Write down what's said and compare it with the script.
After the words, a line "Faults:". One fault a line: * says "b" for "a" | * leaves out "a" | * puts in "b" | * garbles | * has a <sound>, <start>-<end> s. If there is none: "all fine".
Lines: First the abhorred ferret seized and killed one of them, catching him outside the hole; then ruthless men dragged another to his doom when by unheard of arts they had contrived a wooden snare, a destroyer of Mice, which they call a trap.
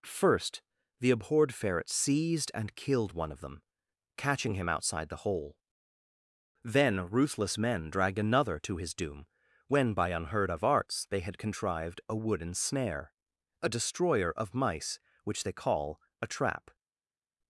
First the abhorred ferret seized and killed one of them, catching him outside the hole; then ruthless men dragged another to his doom when by unheard of arts they had contrived a wooden snare, a destroyer of Mice, which they call a trap.
Faults:
all fine